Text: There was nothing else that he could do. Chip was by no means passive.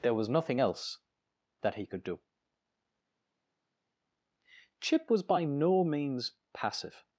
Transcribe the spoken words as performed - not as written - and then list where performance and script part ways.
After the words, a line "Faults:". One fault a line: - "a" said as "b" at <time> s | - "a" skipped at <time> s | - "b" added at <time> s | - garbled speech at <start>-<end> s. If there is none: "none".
There was nothing else that he could do. Chip was by no means passive.
Faults:
none